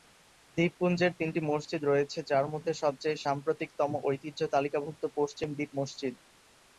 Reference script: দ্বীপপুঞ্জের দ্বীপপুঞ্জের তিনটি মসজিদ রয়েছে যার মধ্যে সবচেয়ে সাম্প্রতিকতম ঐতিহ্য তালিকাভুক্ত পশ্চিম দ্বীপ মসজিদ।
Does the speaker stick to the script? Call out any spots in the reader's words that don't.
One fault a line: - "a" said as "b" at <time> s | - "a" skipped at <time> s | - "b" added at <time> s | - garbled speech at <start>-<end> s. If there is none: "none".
- "দ্বীপপুঞ্জের" skipped at 1.1 s